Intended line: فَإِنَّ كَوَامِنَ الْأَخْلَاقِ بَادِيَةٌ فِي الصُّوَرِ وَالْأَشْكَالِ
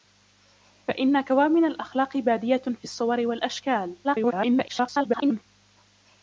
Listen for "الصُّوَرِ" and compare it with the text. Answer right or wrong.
right